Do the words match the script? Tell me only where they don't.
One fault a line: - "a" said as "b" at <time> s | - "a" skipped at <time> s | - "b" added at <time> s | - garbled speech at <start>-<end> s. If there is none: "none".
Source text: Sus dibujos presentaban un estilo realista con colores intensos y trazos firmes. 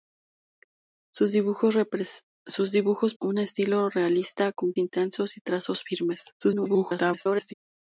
- "presentaban" skipped at 3.1 s
- "colores" skipped at 4.7 s
- garbled speech at 6.4-7.5 s